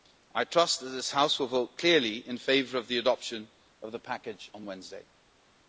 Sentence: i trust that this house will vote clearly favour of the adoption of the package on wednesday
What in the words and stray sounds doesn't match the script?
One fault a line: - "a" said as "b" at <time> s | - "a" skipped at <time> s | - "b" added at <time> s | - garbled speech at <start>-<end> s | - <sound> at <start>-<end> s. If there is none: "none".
- "in" added at 2.3 s